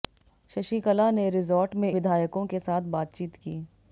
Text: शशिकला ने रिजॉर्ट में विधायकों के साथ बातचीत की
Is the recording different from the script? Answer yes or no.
no